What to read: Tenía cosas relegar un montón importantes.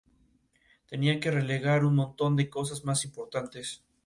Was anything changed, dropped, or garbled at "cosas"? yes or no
yes